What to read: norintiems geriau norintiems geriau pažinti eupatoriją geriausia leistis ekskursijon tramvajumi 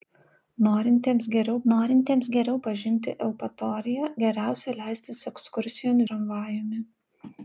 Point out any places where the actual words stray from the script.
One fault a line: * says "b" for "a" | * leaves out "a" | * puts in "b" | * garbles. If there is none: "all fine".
all fine